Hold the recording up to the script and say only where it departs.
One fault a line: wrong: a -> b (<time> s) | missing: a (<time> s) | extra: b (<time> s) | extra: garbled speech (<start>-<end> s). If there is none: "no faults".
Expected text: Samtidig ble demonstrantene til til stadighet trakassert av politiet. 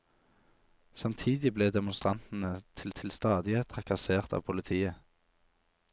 no faults